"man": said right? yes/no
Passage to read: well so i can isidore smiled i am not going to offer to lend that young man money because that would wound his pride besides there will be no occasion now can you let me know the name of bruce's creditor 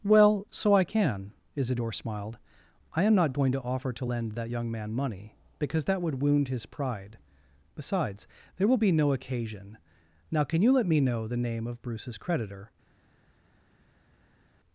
yes